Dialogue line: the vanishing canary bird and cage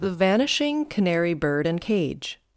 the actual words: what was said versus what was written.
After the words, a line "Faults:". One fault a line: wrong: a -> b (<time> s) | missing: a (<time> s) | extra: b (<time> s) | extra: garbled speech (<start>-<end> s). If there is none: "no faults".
the vanishing canary bird and cage
Faults:
no faults